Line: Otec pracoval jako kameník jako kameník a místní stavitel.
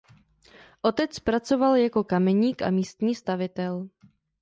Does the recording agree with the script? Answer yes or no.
no